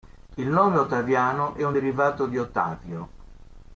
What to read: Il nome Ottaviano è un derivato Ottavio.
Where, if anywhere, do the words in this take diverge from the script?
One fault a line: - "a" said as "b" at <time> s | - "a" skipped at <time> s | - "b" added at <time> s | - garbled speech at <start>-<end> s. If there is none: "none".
- "di" added at 2.3 s